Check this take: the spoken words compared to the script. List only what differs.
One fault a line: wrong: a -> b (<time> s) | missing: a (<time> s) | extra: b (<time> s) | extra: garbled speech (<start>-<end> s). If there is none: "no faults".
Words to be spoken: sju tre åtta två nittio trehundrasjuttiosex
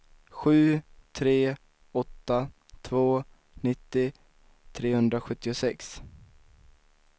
no faults